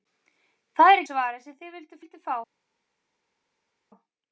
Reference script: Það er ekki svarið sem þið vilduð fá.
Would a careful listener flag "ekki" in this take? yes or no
yes